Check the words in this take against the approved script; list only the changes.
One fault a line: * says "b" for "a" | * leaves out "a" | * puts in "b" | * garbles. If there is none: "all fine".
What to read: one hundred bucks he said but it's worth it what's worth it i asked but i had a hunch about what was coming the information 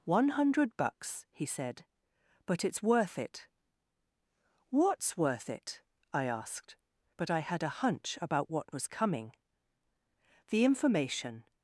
all fine